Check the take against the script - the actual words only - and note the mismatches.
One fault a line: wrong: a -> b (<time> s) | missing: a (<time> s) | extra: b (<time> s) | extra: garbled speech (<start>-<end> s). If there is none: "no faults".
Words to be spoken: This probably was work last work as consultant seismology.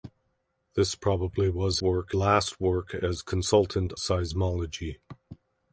no faults